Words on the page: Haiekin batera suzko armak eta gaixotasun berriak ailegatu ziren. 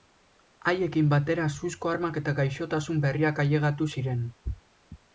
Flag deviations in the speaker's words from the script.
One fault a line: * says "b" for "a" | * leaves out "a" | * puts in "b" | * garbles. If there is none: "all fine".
all fine